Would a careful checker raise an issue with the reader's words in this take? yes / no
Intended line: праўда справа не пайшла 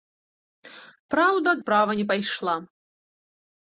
no